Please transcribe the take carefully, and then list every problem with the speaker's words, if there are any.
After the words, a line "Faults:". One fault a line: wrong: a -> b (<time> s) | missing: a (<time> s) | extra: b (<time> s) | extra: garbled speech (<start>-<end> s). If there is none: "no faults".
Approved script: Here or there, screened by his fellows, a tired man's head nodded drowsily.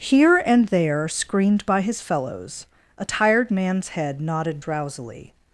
Here and there, screened by his fellows, a tired man's head nodded drowsily.
Faults:
wrong: or -> and (0.5 s)